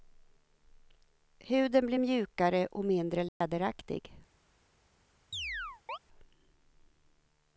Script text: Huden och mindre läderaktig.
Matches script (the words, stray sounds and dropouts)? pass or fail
fail